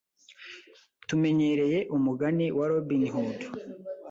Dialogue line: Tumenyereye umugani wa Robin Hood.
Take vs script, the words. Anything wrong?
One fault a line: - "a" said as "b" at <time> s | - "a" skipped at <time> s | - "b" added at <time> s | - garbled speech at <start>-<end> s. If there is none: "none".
none